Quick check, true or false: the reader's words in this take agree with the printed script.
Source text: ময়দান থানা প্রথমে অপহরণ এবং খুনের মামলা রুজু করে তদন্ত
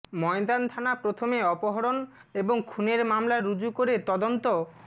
true